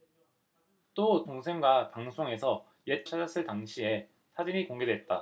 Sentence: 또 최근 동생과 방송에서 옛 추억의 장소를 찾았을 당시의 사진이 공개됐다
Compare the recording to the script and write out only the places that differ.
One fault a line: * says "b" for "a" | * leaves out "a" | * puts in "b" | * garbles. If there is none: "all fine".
* leaves out "최근"
* leaves out "추억의 장소를"